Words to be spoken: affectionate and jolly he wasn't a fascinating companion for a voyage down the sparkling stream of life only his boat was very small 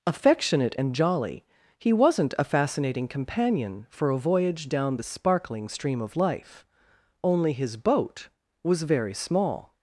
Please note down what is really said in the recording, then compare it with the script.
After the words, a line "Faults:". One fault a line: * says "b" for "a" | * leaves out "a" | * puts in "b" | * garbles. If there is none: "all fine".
affectionate and jolly he wasn't a fascinating companion for a voyage down the sparkling stream of life only his boat was very small
Faults:
all fine